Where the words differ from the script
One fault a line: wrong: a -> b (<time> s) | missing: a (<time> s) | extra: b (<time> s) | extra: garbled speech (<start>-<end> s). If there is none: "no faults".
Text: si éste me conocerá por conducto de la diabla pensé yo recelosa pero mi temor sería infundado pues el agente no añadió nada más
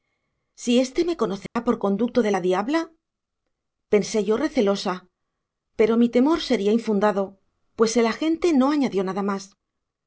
no faults